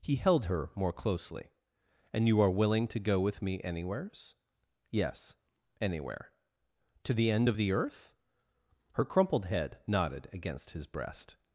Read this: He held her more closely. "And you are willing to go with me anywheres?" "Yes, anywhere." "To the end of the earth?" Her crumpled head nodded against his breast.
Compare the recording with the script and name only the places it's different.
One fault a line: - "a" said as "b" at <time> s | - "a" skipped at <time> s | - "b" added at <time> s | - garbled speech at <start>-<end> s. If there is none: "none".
none